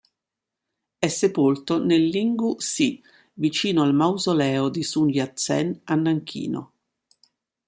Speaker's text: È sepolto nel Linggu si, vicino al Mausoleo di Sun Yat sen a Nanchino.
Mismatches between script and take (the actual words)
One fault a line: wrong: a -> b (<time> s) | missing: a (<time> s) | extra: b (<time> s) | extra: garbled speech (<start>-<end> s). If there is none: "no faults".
no faults